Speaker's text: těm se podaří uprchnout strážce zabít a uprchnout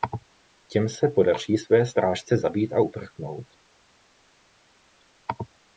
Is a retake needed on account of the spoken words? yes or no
yes